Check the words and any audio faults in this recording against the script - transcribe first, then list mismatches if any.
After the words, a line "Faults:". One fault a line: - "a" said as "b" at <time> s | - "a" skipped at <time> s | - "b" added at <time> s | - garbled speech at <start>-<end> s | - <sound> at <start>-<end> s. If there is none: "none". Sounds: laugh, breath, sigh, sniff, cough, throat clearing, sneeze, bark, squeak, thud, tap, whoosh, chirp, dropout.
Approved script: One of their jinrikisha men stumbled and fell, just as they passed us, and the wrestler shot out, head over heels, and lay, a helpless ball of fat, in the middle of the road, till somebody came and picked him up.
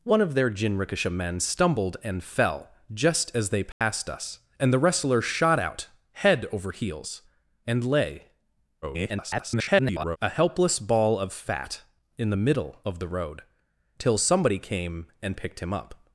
One of their jinrikisha men stumbled and fell, just as they passed us, and the wrestler shot out, head over heels, and lay, [garbled] a helpless ball of fat, in the middle of the road, till somebody came and picked him up.
Faults:
- dropout at 3.7-3.8 s
- garbled speech at 8.8-10.2 s